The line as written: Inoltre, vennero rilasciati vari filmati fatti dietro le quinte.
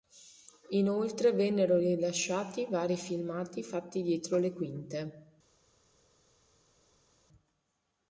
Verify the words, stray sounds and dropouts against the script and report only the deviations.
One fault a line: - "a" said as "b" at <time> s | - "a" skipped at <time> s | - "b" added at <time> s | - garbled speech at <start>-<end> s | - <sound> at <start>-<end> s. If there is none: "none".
none